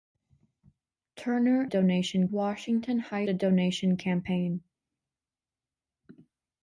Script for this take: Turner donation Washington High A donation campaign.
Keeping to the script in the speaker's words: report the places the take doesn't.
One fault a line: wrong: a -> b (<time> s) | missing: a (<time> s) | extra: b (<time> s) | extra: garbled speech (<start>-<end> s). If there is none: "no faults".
no faults